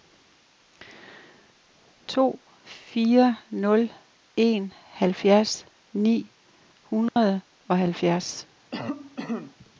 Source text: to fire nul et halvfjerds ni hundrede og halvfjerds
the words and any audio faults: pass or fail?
fail